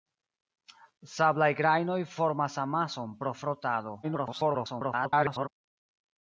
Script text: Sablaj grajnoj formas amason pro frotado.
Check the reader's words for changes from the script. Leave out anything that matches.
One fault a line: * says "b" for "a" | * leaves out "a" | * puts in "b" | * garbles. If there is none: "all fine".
* garbles